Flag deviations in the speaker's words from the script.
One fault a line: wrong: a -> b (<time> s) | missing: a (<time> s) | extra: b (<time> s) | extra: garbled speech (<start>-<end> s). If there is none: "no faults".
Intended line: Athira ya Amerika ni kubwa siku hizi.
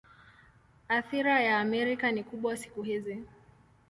no faults